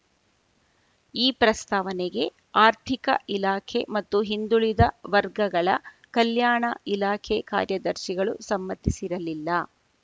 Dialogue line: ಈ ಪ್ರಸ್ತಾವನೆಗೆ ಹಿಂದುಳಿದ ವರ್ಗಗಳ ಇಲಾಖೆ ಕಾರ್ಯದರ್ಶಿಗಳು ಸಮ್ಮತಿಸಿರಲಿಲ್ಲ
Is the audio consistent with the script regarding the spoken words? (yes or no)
no